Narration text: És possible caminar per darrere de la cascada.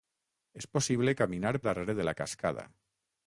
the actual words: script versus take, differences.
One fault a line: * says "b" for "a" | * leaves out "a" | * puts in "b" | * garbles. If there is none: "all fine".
* leaves out "per"